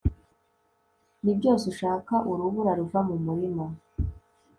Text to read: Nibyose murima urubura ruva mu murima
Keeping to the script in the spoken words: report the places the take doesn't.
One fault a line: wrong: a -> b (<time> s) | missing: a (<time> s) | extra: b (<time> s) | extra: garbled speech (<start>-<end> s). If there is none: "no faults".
wrong: murima -> ushaka (1.7 s)